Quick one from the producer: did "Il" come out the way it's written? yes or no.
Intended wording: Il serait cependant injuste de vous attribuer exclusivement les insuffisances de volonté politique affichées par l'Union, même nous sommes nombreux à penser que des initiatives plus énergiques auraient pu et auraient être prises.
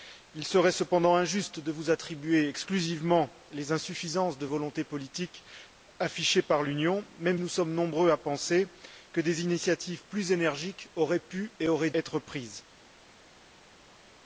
yes